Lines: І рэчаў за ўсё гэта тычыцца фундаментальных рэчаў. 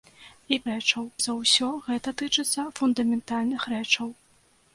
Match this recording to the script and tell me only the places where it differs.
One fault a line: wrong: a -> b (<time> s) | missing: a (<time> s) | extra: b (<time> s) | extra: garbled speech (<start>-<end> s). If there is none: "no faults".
no faults